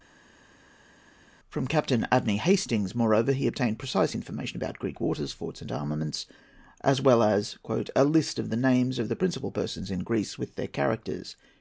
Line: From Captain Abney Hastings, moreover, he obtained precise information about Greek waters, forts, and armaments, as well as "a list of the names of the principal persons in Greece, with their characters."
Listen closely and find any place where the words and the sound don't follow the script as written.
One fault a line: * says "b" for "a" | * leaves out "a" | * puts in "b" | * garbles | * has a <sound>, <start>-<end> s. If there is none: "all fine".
all fine